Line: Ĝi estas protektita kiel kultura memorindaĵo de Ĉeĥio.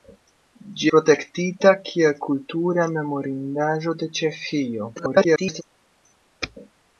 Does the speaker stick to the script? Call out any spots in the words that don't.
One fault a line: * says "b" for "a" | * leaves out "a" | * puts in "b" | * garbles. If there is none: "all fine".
* leaves out "estas"
* garbles